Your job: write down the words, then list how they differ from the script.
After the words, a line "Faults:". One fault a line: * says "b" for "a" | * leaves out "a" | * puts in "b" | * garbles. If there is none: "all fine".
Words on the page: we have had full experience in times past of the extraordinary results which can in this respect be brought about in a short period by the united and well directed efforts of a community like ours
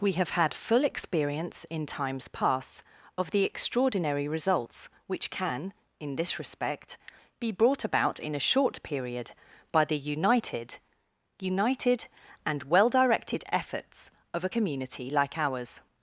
we have had full experience in times past of the extraordinary results which can in this respect be brought about in a short period by the united united and well directed efforts of a community like ours
Faults:
* puts in "united"